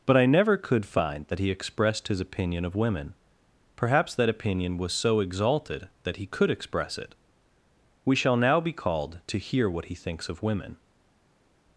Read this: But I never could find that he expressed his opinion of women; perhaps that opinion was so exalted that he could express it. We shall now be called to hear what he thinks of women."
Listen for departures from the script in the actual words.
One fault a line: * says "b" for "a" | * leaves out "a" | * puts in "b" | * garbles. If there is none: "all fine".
all fine